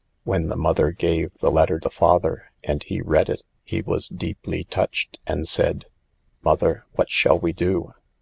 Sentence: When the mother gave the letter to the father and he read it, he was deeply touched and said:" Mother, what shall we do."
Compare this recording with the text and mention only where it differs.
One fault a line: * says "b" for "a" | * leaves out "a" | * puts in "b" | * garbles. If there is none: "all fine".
* leaves out "to"